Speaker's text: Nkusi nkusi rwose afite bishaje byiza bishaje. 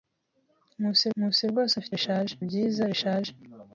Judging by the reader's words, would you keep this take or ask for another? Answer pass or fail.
pass